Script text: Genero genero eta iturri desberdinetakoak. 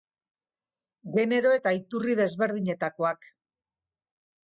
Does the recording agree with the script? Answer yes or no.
no